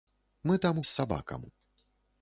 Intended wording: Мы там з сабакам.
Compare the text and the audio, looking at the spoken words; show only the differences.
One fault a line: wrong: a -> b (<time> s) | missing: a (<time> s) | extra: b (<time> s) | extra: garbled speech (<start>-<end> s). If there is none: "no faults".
no faults